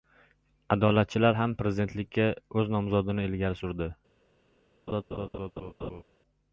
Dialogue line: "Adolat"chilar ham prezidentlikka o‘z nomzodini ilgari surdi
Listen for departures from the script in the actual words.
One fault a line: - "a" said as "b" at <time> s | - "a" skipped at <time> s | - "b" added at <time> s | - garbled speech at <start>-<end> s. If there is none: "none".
none